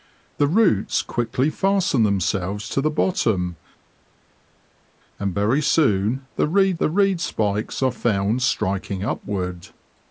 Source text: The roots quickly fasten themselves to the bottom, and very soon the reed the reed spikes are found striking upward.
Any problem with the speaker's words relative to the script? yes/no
no